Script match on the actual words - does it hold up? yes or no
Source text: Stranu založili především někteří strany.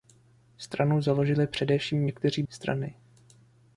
yes